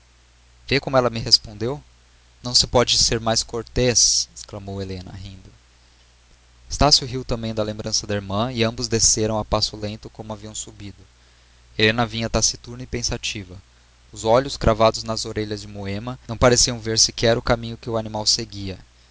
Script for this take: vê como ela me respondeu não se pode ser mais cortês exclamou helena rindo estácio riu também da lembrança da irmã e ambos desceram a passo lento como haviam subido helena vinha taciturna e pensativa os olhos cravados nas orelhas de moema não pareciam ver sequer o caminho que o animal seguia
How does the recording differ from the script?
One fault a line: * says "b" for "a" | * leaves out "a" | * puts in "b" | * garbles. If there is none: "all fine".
all fine